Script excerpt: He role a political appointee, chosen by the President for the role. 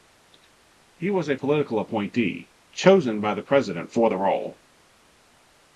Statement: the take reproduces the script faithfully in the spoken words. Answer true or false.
false